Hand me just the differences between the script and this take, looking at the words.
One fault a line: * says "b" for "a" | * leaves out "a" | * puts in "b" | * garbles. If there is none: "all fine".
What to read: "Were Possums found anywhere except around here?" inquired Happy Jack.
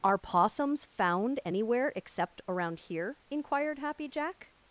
* says "Are" for "Were"